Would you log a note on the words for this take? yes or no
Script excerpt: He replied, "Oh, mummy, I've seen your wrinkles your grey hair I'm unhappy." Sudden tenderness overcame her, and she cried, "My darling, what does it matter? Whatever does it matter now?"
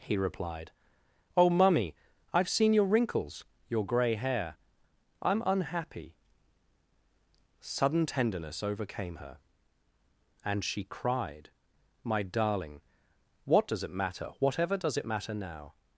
no